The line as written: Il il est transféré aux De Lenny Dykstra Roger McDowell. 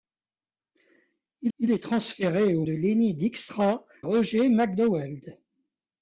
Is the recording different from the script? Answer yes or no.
no